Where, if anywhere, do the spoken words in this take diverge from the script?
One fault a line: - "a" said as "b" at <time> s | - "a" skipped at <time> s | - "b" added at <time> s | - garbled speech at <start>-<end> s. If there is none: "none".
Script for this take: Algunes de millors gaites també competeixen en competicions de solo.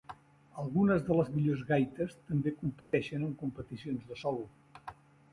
- "les" added at 1.2 s